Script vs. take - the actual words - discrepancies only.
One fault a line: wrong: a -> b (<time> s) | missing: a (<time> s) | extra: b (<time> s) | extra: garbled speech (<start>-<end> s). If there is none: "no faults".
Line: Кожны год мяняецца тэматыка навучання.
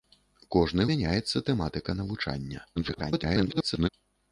missing: год (0.8 s)
extra: garbled speech (2.8-3.9 s)